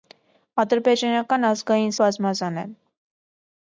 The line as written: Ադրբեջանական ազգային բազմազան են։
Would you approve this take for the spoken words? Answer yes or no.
yes